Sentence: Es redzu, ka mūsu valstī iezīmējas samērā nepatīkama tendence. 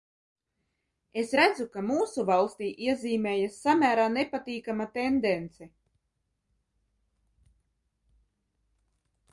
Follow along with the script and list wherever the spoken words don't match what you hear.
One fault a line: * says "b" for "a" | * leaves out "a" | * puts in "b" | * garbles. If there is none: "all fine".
all fine